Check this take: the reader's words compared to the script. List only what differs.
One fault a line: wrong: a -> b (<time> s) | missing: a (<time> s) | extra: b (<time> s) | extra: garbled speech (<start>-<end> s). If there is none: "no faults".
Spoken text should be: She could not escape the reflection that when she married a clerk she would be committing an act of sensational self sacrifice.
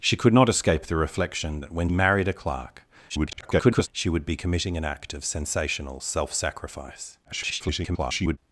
missing: she (1.9 s)
extra: garbled speech (3.1-3.9 s)
extra: garbled speech (7.2-8.4 s)